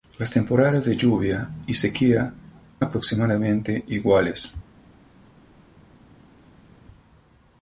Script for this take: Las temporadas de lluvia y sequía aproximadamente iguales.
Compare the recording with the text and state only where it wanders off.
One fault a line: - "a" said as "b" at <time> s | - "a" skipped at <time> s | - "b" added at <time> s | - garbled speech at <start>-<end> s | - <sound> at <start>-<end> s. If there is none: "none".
none